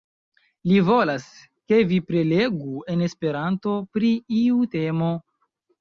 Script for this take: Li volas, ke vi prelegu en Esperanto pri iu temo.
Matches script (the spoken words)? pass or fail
pass